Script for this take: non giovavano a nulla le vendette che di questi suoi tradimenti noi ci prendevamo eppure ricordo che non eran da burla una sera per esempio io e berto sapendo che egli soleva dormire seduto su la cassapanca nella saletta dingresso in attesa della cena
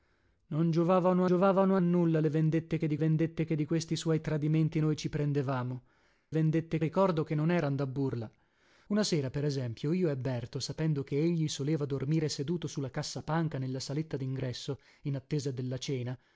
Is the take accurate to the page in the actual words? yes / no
no